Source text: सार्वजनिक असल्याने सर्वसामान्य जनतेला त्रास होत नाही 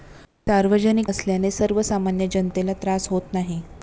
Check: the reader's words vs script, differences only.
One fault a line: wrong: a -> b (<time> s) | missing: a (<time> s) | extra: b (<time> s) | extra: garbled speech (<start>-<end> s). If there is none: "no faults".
no faults